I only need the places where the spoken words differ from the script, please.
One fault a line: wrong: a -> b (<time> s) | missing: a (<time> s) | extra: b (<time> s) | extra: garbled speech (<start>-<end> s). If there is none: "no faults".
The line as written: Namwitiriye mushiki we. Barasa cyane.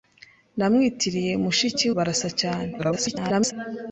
missing: we (1.9 s)
extra: garbled speech (2.8-3.5 s)